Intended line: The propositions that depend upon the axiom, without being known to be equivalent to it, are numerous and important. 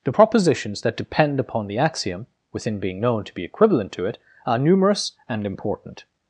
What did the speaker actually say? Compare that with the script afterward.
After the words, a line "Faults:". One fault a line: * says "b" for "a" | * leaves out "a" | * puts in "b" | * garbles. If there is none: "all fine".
The propositions that depend upon the axiom, within being known to be equivalent to it, are numerous and important.
Faults:
* says "within" for "without"